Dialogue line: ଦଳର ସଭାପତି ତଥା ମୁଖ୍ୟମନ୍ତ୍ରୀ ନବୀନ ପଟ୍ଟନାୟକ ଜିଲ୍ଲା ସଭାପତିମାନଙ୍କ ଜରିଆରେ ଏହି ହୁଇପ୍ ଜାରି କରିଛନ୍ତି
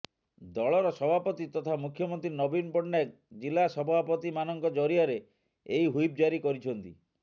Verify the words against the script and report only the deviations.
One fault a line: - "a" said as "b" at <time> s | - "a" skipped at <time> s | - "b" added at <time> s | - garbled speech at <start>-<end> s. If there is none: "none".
none